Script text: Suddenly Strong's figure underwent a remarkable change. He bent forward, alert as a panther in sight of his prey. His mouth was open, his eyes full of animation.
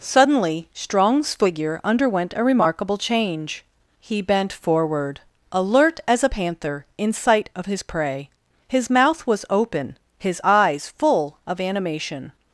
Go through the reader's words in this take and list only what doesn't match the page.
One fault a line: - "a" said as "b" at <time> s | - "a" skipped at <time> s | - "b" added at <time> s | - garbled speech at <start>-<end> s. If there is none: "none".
none